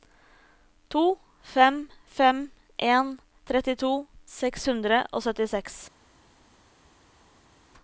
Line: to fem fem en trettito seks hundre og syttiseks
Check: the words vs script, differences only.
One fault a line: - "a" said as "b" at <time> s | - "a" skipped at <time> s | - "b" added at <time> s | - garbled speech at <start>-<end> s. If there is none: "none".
none